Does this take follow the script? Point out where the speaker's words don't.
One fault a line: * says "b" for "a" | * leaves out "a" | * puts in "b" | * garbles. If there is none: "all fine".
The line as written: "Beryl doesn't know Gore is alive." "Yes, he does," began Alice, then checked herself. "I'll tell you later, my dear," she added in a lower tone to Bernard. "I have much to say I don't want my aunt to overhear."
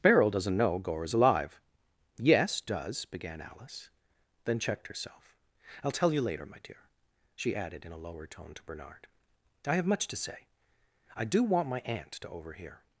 * leaves out "he"
* says "do" for "don't"